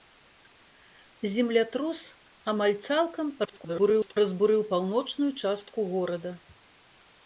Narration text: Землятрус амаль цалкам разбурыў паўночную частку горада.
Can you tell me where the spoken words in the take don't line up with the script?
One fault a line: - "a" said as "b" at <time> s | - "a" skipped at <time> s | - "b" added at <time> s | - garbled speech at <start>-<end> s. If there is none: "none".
- garbled speech at 3.4-4.2 s